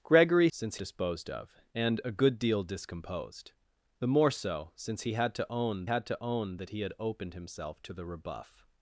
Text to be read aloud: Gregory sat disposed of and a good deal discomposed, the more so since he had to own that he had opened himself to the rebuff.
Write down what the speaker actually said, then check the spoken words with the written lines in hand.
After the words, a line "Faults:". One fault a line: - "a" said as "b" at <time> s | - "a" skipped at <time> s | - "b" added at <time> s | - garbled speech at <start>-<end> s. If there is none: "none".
Gregory since disposed of and a good deal discomposed, the more so since he had to own had to own that he had opened himself to the rebuff.
Faults:
- "sat" said as "since" at 0.5 s
- "had to own" added at 5.8 s